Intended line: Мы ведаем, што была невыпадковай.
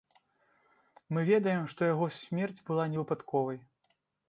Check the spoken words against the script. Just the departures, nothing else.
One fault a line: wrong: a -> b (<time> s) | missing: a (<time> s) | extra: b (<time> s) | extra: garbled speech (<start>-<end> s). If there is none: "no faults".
extra: яго смерць (1.9 s)